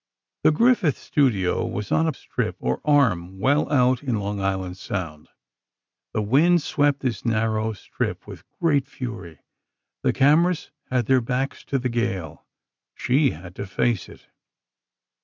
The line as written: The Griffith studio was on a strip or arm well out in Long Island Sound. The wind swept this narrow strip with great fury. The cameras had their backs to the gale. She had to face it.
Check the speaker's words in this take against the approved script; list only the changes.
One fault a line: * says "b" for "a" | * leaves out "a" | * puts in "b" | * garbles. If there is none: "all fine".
all fine